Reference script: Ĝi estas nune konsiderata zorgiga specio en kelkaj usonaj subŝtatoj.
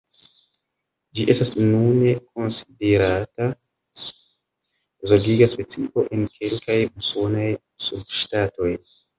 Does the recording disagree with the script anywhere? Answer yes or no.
no